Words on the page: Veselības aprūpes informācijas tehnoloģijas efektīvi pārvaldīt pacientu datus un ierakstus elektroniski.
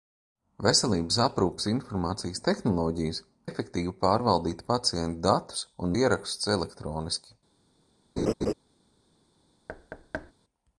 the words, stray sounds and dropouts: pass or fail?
fail